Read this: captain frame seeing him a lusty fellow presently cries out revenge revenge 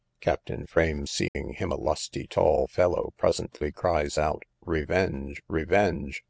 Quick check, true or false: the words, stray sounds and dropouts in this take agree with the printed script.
false